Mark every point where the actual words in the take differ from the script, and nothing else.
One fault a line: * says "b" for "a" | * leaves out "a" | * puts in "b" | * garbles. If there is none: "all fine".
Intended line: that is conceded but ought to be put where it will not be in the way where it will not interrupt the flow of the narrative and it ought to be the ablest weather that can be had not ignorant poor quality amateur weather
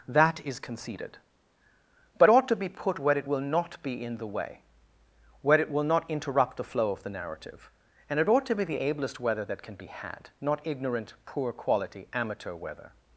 all fine